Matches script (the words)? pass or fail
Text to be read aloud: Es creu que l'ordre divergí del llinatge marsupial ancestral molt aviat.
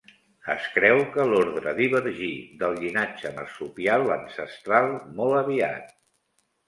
pass